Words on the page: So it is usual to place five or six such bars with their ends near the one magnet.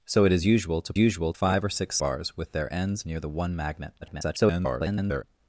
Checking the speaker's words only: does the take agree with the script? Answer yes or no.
no